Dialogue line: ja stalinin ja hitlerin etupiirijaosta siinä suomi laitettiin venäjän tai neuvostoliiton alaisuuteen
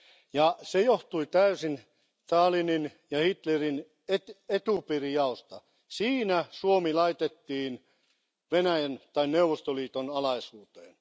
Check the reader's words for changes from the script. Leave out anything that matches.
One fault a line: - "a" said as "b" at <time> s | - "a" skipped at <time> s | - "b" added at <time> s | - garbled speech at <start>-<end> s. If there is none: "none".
- "se johtui täysin" added at 0.6 s